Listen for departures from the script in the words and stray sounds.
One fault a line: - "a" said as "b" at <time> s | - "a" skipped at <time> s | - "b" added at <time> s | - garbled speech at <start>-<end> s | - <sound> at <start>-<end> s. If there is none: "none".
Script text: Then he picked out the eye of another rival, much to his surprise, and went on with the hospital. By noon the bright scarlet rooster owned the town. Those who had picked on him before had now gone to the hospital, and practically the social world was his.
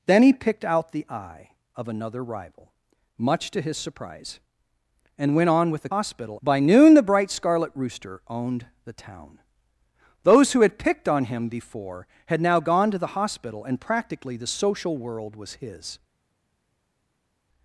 none